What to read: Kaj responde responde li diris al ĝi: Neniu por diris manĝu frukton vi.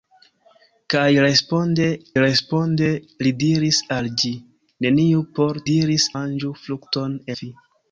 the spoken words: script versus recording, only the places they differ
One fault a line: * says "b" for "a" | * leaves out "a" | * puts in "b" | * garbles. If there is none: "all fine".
all fine